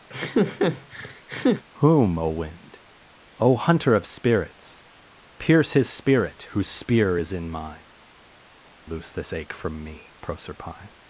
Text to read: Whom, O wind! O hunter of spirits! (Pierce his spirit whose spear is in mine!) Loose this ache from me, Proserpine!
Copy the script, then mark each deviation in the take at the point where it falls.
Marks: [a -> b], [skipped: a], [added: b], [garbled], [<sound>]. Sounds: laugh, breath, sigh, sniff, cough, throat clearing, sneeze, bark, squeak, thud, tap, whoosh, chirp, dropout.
[laugh] Whom, O wind! O hunter of spirits! (Pierce his spirit whose spear is in mine!) Loose this ache from me, Proserpine!